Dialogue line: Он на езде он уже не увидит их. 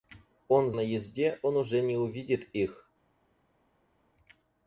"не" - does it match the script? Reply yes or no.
yes